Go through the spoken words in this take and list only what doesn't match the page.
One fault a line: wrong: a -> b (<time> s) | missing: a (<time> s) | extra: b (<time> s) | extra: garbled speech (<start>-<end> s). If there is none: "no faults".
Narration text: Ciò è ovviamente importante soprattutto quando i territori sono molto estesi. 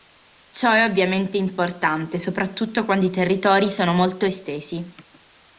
no faults